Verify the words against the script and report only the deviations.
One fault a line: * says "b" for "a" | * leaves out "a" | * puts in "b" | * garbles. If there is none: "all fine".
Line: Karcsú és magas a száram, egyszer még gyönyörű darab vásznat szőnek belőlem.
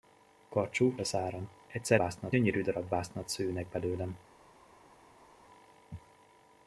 * leaves out "és magas"
* says "vásznat" for "még"